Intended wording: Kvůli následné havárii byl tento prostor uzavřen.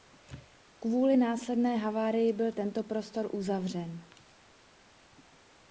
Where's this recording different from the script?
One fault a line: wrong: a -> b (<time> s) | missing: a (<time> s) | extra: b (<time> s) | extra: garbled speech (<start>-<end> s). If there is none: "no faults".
no faults